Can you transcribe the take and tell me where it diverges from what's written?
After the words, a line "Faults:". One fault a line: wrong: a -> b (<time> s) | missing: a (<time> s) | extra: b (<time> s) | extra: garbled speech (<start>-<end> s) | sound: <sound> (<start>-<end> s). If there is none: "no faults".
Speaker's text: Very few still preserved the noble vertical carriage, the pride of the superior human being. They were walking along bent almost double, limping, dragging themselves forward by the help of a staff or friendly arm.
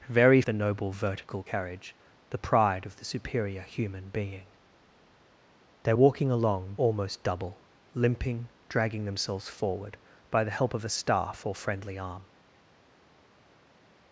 Very the noble vertical carriage, the pride of the superior human being. They walking along almost double, limping, dragging themselves forward by the help of a staff or friendly arm.
Faults:
missing: few still preserved (0.4 s)
missing: were (5.9 s)
missing: bent (6.7 s)